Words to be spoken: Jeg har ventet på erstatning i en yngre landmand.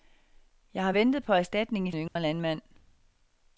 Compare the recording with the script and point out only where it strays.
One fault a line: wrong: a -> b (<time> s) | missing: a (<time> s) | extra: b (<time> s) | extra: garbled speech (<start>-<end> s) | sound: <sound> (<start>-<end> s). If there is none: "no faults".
sound: dropout (2.1-2.2 s)